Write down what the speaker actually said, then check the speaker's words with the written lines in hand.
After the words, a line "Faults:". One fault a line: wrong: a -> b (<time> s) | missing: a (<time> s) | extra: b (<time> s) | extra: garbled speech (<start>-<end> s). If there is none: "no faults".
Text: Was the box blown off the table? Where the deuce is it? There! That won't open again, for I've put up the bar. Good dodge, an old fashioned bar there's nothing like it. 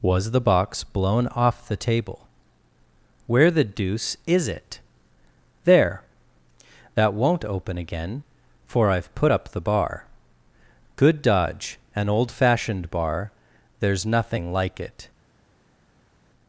Was the box blown off the table? Where the deuce is it? There! That won't open again, for I've put up the bar. Good dodge, an old fashioned bar there's nothing like it.
Faults:
no faults